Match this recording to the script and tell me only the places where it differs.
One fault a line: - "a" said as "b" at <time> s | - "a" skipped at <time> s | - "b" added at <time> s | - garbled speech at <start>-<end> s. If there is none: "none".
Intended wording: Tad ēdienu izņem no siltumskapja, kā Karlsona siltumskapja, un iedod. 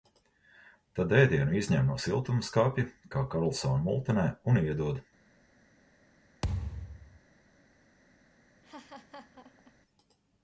- "siltumskapja" said as "multenē" at 3.9 s